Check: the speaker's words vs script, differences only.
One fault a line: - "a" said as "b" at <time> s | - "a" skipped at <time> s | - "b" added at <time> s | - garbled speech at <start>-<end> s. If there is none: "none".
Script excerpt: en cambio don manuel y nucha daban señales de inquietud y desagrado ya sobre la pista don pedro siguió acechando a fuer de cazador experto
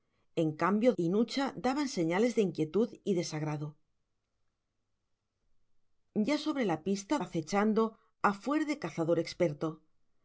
- "don manuel" skipped at 0.9 s
- "don pedro siguió" skipped at 7.1 s